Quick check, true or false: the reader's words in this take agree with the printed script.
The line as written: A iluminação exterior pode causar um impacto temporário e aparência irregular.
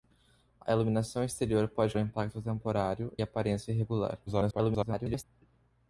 false